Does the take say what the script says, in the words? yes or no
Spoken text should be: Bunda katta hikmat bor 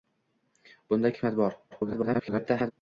no